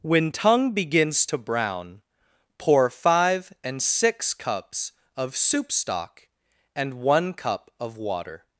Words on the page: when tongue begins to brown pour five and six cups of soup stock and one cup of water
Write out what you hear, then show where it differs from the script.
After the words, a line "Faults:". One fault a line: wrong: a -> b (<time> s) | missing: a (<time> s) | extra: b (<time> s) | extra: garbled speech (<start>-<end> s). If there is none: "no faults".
when tongue begins to brown pour five and six cups of soup stock and one cup of water
Faults:
no faults